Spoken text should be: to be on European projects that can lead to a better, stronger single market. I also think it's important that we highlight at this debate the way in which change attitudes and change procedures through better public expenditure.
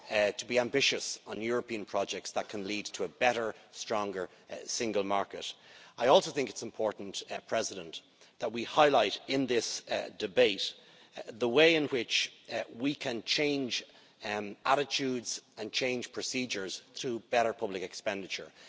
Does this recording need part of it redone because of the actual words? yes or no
yes